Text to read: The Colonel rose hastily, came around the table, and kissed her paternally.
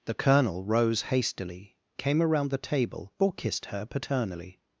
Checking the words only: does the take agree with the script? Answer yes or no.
no